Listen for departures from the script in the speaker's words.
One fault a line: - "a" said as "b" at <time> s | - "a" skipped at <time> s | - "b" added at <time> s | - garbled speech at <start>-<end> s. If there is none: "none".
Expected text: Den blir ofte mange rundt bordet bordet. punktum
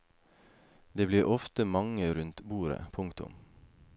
- "Den" said as "Det" at 0.9 s
- "bordet" skipped at 2.9 s